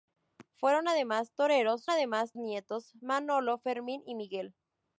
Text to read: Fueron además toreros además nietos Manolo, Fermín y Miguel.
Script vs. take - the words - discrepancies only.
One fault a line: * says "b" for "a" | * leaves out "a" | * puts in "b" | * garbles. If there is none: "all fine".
all fine